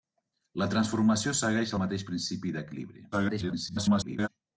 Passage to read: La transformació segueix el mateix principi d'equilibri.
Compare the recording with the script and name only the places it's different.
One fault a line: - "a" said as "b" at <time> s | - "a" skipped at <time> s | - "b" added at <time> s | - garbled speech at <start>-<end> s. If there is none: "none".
- garbled speech at 3.1-4.3 s